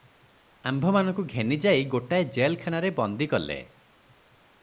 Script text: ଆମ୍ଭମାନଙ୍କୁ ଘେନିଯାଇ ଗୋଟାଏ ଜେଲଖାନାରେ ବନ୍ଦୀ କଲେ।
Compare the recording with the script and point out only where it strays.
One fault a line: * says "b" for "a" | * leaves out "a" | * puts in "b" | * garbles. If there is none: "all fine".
all fine